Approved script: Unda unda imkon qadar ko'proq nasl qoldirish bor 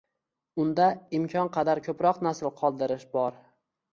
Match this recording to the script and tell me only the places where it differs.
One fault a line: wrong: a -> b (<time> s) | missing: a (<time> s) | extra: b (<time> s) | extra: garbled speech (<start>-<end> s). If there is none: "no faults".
missing: unda (0.8 s)